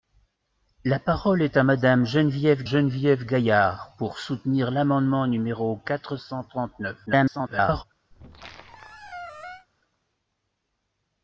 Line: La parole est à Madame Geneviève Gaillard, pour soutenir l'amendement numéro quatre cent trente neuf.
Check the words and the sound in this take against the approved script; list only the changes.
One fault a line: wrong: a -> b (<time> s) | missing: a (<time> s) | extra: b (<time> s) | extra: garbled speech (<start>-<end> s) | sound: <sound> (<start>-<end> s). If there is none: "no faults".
extra: Geneviève (2.6 s)
extra: garbled speech (7.1-7.8 s)
sound: squeak (8.1-9.7 s)